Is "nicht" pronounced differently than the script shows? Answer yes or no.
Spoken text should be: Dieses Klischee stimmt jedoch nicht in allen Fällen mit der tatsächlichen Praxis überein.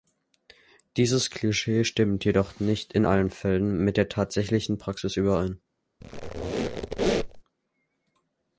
no